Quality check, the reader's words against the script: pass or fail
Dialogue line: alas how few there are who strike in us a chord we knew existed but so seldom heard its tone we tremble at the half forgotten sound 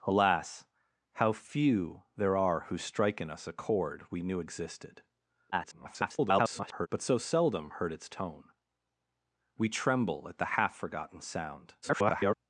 fail